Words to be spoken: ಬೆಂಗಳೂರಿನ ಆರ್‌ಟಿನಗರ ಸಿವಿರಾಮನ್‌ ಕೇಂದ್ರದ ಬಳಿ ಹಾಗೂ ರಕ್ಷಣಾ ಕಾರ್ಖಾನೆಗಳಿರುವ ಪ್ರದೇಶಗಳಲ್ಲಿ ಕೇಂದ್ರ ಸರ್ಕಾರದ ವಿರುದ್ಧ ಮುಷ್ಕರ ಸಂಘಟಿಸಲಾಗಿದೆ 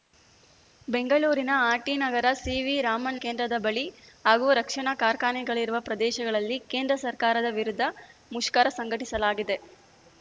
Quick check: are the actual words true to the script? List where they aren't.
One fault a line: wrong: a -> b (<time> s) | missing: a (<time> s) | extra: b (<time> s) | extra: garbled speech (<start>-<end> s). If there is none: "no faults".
no faults